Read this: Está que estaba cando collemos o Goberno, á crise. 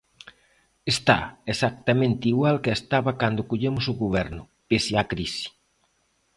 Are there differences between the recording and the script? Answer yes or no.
yes